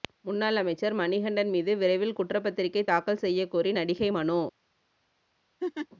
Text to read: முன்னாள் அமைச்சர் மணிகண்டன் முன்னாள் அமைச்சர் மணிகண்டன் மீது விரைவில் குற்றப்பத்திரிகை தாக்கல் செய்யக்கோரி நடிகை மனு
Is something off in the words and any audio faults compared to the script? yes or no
yes